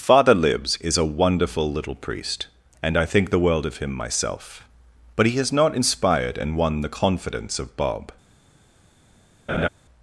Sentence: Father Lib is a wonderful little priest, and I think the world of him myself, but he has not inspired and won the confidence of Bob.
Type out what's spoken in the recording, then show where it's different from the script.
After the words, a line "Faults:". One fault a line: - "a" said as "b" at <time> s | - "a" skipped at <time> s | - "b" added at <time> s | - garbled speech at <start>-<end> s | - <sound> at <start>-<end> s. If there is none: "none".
Father Libs is a wonderful little priest, and I think the world of him myself, but he has not inspired and won the confidence of Bob.
Faults:
- "Lib" said as "Libs" at 0.3 s
- laugh at 9.5-9.7 s